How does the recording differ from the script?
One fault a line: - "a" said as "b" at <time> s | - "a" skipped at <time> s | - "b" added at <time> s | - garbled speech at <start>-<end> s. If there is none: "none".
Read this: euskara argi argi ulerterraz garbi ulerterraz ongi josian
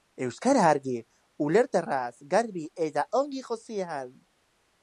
- "argi" skipped at 0.9 s
- "ulerterraz" said as "eta" at 2.9 s